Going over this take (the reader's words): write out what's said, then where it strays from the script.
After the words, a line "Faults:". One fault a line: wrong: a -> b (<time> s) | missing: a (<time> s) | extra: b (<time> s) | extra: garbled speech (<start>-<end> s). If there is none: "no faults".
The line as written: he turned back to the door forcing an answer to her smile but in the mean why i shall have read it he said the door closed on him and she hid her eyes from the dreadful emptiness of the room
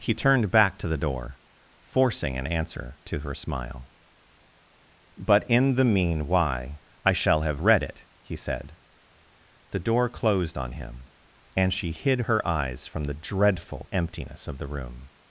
he turned back to the door forcing an answer to her smile but in the mean why i shall have read it he said the door closed on him and she hid her eyes from the dreadful emptiness of the room
Faults:
no faults